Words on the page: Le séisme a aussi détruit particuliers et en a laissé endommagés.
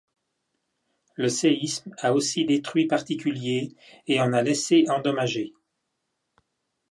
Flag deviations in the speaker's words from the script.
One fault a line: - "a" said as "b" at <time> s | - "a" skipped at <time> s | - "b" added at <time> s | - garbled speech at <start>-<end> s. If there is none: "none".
none